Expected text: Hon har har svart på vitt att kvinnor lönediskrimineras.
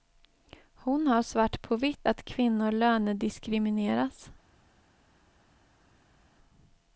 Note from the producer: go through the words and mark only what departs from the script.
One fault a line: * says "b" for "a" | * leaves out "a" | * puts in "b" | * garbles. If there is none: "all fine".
* leaves out "har"